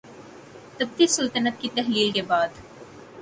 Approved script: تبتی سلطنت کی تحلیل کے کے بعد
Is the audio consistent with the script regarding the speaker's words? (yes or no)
no